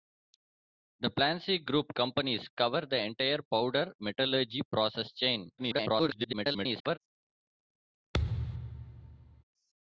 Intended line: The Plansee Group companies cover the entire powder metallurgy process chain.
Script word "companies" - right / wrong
right